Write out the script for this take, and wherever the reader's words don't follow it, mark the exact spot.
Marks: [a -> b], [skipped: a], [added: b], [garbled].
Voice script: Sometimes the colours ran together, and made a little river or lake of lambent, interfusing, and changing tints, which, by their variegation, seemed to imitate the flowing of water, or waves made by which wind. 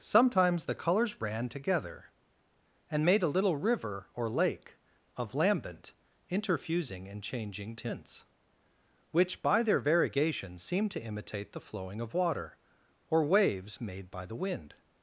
Sometimes the colours ran together, and made a little river or lake of lambent, interfusing, and changing tints, which, by their variegation, seemed to imitate the flowing of water, or waves made by [which -> the] wind.